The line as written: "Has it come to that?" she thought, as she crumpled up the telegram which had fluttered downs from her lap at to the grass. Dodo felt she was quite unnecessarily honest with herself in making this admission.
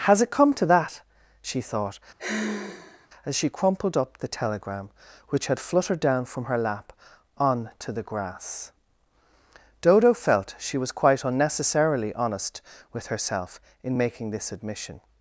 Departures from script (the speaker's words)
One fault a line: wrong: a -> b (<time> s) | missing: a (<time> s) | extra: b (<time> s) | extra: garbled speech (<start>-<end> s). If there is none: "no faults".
wrong: downs -> down (6.0 s)
wrong: at -> on (7.4 s)